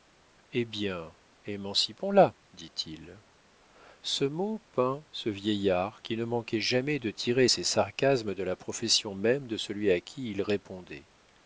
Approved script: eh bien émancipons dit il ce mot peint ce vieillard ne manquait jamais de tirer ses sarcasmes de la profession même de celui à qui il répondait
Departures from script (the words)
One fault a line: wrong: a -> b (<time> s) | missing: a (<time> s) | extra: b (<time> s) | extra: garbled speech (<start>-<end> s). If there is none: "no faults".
extra: la (2.1 s)
extra: qui (6.0 s)